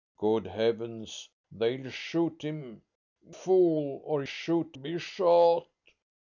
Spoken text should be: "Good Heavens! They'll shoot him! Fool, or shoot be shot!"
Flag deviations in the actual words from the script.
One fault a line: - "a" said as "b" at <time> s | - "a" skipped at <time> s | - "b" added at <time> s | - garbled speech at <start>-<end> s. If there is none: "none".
none